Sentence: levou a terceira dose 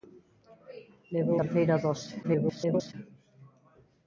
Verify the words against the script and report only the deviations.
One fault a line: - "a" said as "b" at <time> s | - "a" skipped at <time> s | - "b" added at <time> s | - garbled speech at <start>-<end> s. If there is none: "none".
- "a" skipped at 1.4 s
- garbled speech at 2.2-2.9 s